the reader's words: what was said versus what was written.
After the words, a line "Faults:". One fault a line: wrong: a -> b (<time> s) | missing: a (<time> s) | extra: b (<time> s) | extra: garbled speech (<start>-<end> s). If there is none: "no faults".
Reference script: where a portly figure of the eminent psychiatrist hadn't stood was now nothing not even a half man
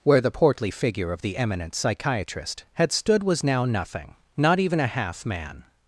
where the portly figure of the eminent psychiatrist had stood was now nothing not even a half man
Faults:
wrong: a -> the (0.2 s)
wrong: hadn't -> had (2.7 s)